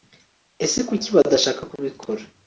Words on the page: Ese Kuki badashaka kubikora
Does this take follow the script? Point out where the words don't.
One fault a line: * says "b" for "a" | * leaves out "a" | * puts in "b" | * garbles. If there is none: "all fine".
all fine